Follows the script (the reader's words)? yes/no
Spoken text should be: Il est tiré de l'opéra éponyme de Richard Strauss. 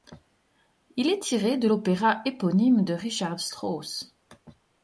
yes